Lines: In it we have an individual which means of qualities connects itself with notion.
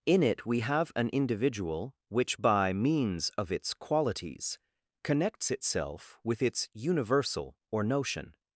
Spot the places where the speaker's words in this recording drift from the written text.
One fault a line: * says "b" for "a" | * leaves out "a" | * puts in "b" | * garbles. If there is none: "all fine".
* puts in "by"
* puts in "its"
* puts in "its universal or"